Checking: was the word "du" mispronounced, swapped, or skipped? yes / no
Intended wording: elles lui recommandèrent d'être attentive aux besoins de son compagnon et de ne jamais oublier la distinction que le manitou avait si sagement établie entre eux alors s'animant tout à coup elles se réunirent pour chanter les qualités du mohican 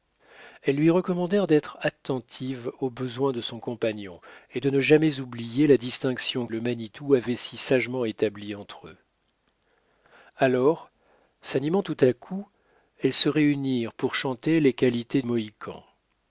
yes